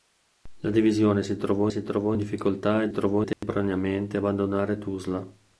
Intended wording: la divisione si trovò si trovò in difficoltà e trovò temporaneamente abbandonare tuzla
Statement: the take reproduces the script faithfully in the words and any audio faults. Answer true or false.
false